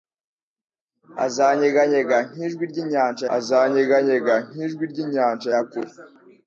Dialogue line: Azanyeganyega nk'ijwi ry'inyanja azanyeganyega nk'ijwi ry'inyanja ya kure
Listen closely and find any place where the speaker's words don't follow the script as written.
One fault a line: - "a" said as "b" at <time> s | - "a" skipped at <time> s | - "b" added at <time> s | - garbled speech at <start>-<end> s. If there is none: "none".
none